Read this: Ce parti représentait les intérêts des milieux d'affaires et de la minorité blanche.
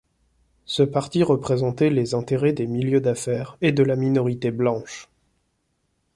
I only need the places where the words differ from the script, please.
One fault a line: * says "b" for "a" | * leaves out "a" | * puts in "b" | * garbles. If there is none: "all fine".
all fine